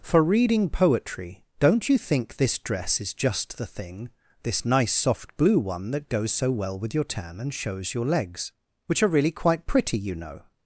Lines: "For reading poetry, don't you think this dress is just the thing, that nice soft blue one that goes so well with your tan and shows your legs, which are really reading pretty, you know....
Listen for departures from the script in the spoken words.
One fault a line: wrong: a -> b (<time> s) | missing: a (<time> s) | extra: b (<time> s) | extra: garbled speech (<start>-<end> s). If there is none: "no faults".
wrong: that -> this (4.4 s)
wrong: reading -> quite (9.3 s)